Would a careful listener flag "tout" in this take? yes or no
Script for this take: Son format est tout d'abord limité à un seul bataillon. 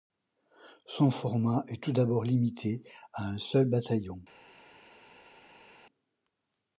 no